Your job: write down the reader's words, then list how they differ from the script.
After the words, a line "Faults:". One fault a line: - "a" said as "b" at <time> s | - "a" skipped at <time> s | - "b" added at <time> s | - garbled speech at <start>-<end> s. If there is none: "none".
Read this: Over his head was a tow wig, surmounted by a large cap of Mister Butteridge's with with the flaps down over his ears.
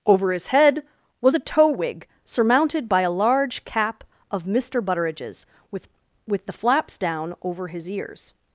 Over his head was a tow wig, surmounted by a large cap of Mister Butteridge's with with the flaps down over his ears.
Faults:
none